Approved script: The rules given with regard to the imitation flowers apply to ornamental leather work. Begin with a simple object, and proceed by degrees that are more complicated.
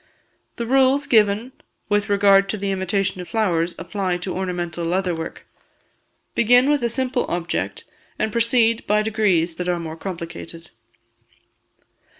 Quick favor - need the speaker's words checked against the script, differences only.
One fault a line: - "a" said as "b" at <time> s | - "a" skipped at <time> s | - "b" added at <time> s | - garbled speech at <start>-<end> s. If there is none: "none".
none